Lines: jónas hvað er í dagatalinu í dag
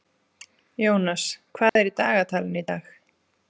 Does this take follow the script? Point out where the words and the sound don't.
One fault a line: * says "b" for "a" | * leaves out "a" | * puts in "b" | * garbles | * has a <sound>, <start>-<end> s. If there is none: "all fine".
* has a dropout, 1.7-1.8 s